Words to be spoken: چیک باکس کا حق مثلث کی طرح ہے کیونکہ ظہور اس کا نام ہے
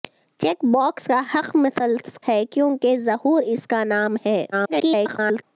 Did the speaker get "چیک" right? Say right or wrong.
right